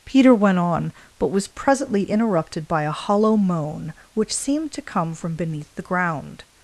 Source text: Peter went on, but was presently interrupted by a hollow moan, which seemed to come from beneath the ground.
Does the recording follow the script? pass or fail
pass